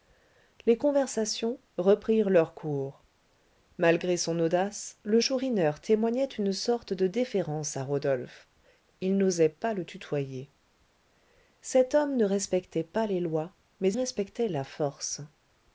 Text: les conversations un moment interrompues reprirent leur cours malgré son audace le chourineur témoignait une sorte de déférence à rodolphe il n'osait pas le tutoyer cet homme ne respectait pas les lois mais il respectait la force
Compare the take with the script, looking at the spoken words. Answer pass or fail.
fail